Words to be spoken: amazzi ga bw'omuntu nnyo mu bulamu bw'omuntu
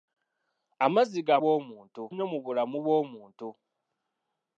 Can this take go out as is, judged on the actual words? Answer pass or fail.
pass